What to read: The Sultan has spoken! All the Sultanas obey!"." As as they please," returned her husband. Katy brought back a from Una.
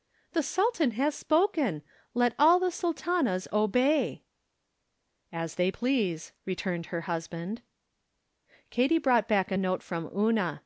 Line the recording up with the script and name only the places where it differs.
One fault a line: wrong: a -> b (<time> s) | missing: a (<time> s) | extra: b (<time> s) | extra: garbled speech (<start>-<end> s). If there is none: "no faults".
extra: Let (2.1 s)
missing: as (5.5 s)
extra: note (9.6 s)